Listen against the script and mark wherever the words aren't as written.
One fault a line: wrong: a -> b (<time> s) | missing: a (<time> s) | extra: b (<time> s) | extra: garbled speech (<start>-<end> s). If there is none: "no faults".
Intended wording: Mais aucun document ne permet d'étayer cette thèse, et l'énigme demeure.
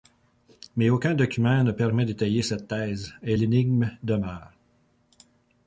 no faults